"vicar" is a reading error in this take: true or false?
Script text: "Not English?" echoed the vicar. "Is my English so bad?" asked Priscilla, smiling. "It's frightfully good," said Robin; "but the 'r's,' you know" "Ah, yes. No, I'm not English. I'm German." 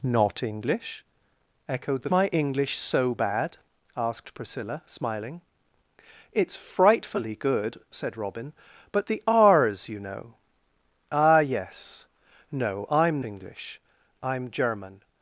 true